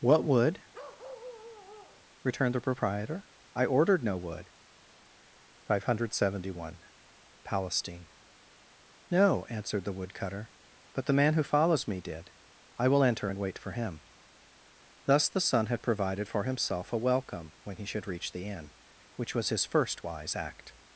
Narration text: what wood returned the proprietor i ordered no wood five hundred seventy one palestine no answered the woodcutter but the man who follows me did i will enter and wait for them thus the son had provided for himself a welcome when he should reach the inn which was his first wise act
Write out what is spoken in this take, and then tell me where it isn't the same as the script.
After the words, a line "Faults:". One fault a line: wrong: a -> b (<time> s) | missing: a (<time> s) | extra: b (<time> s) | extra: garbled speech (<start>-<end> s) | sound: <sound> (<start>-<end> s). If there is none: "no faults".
what wood returned the proprietor i ordered no wood five hundred seventy one palestine no answered the woodcutter but the man who follows me did i will enter and wait for him thus the son had provided for himself a welcome when he should reach the inn which was his first wise act
Faults:
sound: bark (0.7-2.0 s)
wrong: them -> him (13.7 s)